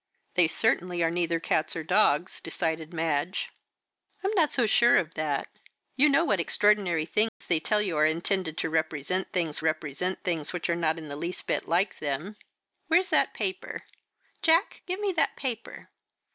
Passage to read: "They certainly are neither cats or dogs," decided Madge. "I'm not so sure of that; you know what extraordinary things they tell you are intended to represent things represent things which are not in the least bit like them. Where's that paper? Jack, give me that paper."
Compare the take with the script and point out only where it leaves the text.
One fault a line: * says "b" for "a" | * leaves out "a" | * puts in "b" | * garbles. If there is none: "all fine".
all fine